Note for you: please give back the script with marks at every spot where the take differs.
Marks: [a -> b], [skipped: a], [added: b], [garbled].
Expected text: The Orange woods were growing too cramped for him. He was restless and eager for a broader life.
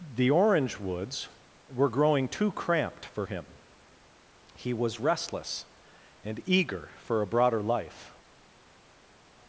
The Orange woods were growing too cramped for him. He was restless and eager for a broader life.